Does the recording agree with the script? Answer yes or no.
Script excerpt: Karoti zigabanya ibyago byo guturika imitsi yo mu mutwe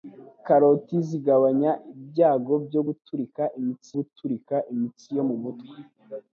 no